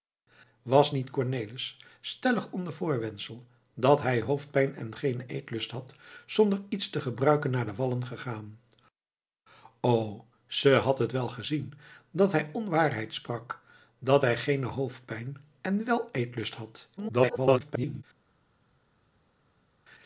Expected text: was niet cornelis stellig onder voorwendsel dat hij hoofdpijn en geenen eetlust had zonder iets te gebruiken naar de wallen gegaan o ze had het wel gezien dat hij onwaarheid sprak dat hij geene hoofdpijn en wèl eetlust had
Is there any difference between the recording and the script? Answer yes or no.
yes